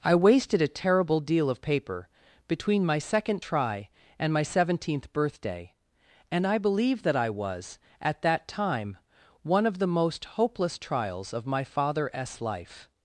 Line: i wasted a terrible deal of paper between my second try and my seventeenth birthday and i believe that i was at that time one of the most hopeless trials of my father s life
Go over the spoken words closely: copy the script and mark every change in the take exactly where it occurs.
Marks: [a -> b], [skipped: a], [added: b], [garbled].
i wasted a terrible deal of paper between my second try and my seventeenth birthday and i believe that i was at that time one of the most hopeless trials of my father s life